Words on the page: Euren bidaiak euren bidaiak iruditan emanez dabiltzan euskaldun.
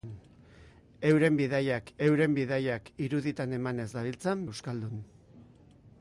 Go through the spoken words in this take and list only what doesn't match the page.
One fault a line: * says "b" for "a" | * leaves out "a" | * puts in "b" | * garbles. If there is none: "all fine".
all fine